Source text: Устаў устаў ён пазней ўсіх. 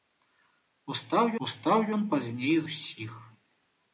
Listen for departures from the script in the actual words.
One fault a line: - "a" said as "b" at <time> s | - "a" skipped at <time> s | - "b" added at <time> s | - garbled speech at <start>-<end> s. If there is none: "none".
none